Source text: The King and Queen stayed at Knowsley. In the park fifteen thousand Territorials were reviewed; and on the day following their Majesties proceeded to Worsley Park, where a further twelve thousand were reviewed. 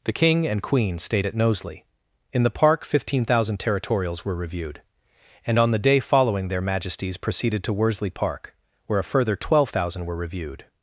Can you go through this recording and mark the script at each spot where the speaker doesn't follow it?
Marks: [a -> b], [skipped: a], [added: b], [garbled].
The King and Queen stayed at Knowsley. In the park fifteen thousand Territorials were reviewed; and on the day following their Majesties proceeded to Worsley Park, where a further twelve thousand were reviewed.